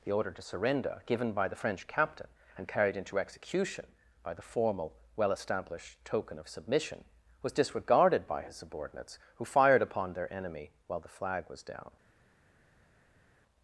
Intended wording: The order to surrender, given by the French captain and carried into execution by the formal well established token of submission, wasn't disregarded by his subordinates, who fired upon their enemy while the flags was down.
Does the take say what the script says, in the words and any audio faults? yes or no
no